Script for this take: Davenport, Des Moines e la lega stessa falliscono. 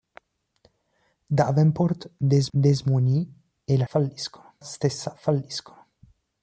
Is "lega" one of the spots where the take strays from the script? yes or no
yes